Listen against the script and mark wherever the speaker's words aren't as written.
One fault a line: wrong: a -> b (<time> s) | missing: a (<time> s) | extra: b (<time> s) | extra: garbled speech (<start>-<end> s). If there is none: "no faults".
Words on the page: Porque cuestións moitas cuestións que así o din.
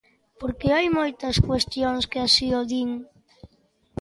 wrong: cuestións -> hai (0.8 s)